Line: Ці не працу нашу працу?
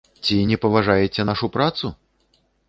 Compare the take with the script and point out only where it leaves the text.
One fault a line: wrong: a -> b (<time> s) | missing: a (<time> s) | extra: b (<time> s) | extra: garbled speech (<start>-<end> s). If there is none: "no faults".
wrong: працу -> паважаеце (0.6 s)